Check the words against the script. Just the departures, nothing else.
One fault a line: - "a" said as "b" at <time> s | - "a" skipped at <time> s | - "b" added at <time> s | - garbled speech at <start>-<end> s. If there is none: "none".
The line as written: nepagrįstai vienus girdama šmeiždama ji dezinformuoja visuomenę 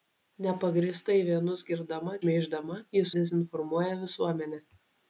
none